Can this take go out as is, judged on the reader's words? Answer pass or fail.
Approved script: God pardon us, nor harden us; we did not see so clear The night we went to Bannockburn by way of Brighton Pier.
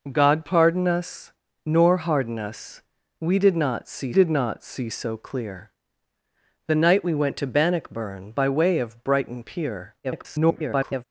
fail